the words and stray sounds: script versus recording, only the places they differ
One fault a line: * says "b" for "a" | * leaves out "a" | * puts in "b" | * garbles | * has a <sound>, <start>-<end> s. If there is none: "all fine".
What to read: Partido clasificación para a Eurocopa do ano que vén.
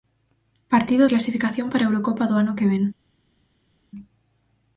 all fine